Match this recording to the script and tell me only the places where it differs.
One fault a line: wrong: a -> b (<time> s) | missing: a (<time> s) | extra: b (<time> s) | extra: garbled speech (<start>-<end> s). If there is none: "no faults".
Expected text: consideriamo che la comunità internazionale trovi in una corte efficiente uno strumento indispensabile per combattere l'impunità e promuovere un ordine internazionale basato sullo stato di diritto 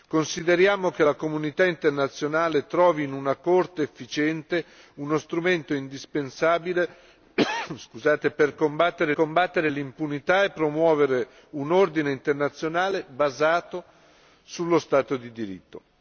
extra: combattere (9.1 s)